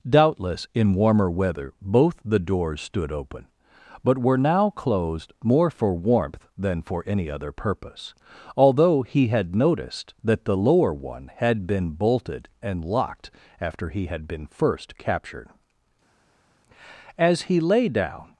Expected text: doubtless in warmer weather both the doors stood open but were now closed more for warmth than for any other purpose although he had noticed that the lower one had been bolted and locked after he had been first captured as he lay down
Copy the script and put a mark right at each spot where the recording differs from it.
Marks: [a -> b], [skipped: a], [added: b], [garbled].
doubtless in warmer weather both the doors stood open but were now closed more for warmth than for any other purpose although he had noticed that the lower one had been bolted and locked after he had been first captured as he lay down